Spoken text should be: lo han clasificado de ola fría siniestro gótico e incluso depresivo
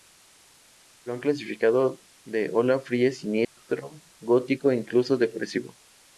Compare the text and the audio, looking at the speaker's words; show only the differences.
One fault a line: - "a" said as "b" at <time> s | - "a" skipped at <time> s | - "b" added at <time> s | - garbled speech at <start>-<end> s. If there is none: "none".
none